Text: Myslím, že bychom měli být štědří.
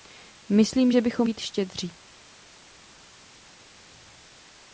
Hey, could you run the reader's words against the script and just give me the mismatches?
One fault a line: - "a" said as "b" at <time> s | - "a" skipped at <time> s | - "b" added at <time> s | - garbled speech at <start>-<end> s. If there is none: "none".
- "měli" skipped at 1.3 s